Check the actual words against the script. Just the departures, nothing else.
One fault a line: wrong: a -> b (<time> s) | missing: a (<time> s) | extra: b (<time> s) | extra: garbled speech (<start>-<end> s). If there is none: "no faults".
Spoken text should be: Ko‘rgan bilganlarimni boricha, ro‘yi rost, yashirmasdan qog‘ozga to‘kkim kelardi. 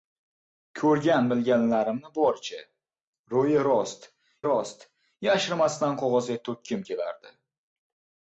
extra: rost (4.5 s)